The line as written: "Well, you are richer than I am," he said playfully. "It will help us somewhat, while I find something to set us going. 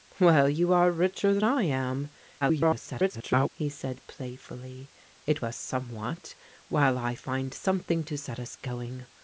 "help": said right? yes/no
no